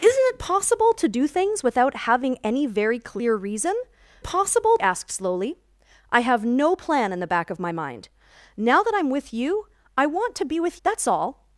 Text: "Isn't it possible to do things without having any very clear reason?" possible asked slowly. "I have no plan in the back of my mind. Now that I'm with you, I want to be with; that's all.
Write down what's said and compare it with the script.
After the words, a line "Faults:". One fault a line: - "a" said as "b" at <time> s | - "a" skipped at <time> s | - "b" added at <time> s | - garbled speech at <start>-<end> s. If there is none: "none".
"Isn't it possible to do things without having any very clear reason?" possible asked slowly. "I have no plan in the back of my mind. Now that I'm with you, I want to be with; that's all.
Faults:
none